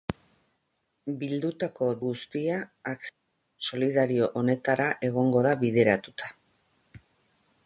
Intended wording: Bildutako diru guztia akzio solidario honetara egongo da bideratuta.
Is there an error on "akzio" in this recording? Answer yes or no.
no